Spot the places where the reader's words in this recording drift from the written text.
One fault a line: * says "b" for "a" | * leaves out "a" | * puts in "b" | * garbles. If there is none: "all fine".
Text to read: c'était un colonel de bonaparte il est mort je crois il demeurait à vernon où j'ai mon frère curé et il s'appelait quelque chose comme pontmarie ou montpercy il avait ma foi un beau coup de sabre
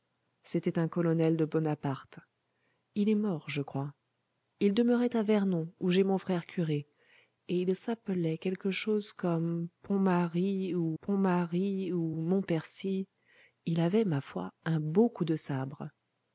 * puts in "pontmarie ou"